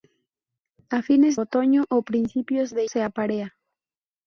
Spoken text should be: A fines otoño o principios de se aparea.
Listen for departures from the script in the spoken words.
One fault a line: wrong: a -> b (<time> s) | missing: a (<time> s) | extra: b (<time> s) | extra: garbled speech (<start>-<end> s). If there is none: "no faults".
no faults